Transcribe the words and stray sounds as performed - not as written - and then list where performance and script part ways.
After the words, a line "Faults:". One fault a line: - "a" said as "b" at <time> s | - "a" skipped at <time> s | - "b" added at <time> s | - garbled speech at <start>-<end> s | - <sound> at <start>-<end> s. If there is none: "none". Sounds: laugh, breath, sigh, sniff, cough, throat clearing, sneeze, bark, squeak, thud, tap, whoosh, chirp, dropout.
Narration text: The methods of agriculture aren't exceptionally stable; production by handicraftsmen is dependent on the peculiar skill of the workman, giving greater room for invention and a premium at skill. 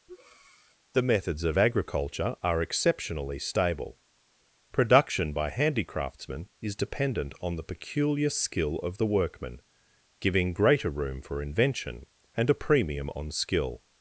The methods of agriculture are exceptionally stable; production by handicraftsmen is dependent on the peculiar skill of the workman, giving greater room for invention and a premium on skill.
Faults:
- breath at 0.1-0.8 s
- "aren't" said as "are" at 2.4 s
- "at" said as "on" at 13.1 s